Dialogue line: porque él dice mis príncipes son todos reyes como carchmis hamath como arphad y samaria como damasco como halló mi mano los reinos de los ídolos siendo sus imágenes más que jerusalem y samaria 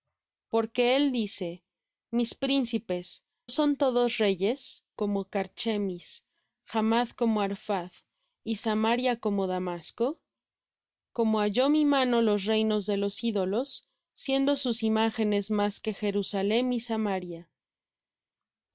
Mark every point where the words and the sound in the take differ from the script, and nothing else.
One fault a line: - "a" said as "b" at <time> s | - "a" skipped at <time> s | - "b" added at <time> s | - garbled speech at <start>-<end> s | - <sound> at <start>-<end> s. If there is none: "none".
none